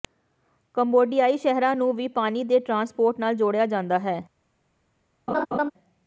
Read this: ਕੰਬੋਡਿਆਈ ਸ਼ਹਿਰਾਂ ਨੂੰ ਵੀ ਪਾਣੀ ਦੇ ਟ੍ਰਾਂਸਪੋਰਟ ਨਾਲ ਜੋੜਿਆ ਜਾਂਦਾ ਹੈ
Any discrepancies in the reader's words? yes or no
no